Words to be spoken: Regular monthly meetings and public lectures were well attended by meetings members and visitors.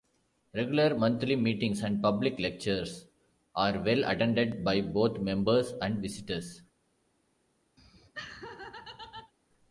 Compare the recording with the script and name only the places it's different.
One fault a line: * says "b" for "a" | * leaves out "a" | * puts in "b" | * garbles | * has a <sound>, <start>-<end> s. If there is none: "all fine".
* says "are" for "were"
* says "both" for "meetings"
* has a laugh, 7.8-9.3 s